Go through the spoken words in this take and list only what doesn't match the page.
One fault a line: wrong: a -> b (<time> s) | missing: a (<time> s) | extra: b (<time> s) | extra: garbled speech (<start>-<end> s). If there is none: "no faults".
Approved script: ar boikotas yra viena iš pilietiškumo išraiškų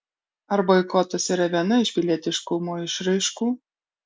no faults